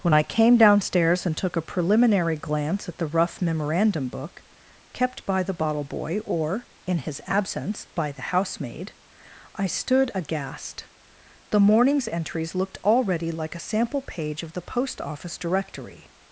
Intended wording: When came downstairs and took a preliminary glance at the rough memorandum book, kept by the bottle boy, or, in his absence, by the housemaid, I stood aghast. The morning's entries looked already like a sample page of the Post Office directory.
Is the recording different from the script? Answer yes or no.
yes